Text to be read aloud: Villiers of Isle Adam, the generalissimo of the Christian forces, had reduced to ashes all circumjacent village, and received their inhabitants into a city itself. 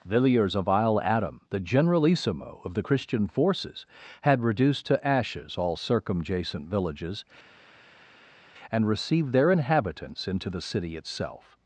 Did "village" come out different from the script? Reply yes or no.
yes